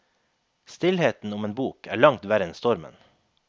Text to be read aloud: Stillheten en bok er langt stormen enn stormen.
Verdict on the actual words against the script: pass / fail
fail